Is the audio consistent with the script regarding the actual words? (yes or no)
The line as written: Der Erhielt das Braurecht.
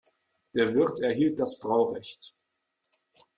no